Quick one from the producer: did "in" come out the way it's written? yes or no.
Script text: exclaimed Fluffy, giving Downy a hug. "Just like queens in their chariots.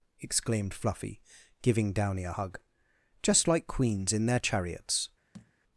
yes